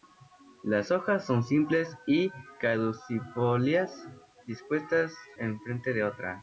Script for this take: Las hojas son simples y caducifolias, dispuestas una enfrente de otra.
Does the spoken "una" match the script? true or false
false